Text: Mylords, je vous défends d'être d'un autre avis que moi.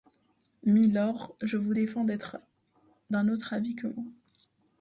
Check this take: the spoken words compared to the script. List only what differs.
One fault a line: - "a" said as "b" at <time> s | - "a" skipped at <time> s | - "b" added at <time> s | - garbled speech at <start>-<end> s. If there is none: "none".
none